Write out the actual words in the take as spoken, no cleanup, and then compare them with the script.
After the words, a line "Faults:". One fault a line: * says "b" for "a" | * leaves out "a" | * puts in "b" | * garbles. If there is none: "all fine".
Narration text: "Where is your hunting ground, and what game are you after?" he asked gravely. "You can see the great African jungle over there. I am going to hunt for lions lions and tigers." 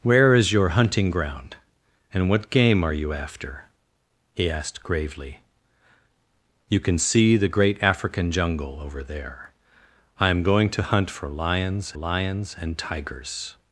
"Where is your hunting ground, and what game are you after?" he asked gravely. "You can see the great African jungle over there. I am going to hunt for lions lions and tigers."
Faults:
all fine